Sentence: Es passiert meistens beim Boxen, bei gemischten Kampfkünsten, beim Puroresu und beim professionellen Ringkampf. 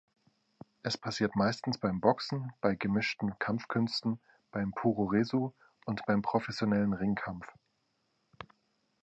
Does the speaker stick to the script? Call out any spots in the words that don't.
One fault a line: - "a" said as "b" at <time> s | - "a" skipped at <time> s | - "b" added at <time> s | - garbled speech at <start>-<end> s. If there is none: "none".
none